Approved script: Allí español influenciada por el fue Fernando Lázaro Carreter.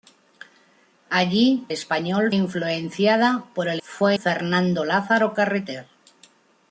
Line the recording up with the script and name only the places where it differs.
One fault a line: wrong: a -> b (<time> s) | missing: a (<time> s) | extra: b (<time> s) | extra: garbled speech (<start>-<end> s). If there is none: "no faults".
no faults